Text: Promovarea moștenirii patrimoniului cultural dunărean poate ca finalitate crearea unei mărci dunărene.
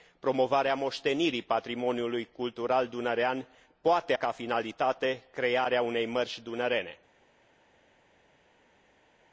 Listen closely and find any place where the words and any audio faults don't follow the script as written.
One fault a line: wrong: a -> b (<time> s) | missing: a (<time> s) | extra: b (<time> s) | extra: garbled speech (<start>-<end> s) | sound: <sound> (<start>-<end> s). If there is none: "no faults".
no faults